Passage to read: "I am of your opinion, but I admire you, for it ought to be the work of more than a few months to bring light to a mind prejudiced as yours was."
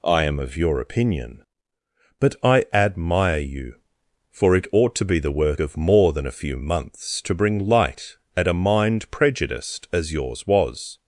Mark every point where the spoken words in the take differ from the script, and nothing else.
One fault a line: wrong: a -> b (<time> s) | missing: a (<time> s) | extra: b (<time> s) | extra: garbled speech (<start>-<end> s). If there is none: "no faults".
wrong: to -> at (8.4 s)